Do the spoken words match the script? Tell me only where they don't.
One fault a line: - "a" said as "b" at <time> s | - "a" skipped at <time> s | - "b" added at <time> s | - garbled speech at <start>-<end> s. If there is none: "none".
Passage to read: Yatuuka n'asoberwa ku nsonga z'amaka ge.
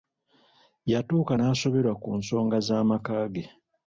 none